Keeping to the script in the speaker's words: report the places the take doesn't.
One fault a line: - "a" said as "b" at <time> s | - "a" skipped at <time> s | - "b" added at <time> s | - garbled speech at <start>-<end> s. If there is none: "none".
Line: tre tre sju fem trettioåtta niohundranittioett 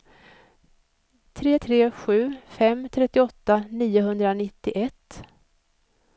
none